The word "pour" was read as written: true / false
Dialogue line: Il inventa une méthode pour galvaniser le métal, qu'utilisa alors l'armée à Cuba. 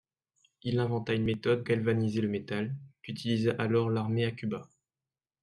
false